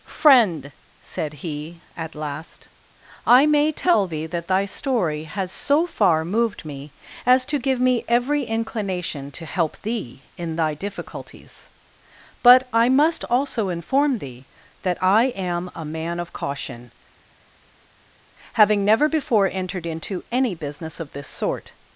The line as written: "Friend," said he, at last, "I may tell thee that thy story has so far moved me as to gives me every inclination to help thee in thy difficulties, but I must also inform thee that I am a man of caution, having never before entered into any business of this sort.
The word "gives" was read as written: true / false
false